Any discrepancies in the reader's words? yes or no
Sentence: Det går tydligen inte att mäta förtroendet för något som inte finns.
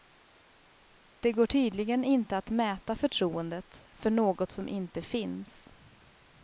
no